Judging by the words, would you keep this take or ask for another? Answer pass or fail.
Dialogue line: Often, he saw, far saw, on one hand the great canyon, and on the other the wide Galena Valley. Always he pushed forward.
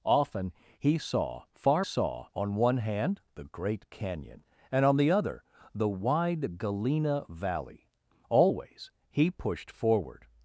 pass